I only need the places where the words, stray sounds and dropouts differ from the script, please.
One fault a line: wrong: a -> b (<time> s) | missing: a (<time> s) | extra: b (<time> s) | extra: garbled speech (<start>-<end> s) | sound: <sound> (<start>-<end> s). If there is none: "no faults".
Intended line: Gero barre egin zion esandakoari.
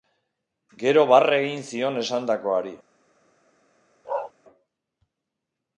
sound: bark (4.0-4.3 s)